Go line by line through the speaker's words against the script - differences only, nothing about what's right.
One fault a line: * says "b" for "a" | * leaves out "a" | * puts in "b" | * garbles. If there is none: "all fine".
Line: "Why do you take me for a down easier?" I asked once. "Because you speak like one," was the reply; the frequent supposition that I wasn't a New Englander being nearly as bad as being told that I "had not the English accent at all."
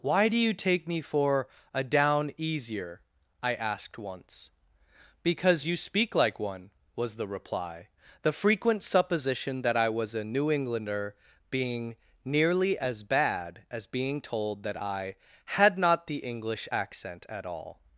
* says "was" for "wasn't"